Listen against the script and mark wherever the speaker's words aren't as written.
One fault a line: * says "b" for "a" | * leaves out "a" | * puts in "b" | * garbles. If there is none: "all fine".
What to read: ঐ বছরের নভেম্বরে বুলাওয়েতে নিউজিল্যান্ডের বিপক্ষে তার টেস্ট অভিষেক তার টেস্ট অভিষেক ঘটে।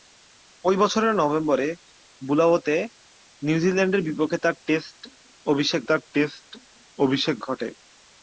all fine